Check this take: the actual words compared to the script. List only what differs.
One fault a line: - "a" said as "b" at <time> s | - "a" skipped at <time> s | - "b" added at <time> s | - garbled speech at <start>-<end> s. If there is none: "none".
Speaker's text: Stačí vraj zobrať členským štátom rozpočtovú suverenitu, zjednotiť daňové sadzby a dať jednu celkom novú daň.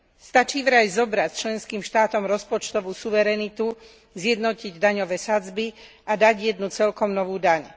none